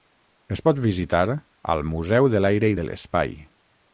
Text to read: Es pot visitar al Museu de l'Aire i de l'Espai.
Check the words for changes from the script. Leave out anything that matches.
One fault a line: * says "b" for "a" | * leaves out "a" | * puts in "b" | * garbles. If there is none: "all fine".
all fine